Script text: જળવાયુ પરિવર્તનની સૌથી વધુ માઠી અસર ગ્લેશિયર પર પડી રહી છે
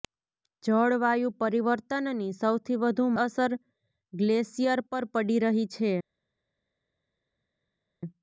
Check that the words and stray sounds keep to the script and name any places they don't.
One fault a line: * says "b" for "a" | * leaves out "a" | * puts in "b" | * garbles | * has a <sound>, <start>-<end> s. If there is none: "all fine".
* leaves out "માઠી"